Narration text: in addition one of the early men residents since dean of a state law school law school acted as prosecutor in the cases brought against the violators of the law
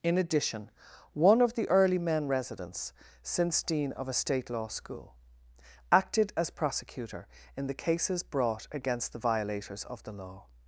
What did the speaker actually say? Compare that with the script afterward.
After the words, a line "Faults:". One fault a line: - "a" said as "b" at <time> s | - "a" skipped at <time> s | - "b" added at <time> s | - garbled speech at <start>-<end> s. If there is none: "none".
in addition one of the early men residents since dean of a state law school acted as prosecutor in the cases brought against the violators of the law
Faults:
- "law school" skipped at 5.1 s